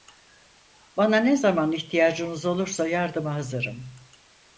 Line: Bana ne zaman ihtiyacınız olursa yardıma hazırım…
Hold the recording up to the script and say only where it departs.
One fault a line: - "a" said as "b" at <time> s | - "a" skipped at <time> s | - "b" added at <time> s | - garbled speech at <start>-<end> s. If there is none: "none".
none